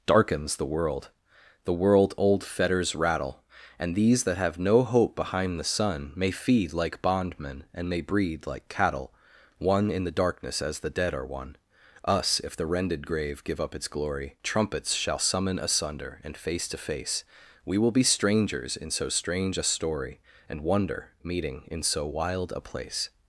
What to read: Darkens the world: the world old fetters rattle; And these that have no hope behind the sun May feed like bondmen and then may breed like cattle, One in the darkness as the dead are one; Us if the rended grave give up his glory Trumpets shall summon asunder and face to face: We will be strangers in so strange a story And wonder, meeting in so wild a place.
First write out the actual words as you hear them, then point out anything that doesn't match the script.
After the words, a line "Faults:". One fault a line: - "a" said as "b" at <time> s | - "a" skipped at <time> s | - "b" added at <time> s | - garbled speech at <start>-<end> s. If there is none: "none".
Darkens the world: the world old fetters rattle; And these that have no hope behind the sun May feed like bondmen and may breed like cattle, One in the darkness as the dead are one; Us if the rended grave give up its glory Trumpets shall summon asunder and face to face: We will be strangers in so strange a story And wonder, meeting in so wild a place.
Faults:
- "then" skipped at 7.9 s
- "his" said as "its" at 13.8 s